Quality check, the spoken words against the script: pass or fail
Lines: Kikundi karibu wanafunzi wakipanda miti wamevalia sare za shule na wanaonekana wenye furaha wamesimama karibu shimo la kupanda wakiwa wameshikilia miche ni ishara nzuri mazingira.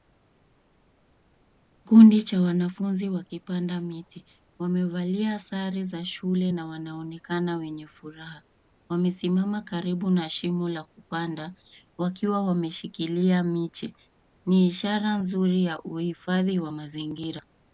fail